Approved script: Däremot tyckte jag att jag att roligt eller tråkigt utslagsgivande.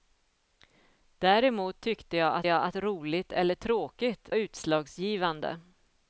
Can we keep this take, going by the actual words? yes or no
yes